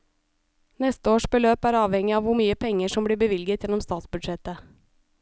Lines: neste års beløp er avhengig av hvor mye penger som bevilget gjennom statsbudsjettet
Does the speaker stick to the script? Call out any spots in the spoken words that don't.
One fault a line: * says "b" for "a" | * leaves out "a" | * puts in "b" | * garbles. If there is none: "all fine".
* puts in "blir"